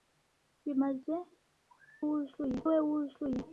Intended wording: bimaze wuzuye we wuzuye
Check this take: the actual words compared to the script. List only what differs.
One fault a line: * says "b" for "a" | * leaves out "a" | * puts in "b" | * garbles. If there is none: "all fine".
all fine